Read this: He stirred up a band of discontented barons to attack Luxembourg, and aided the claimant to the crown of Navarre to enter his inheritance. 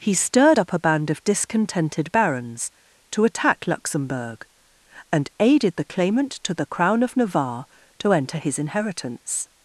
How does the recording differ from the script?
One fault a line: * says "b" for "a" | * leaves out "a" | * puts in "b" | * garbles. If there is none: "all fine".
all fine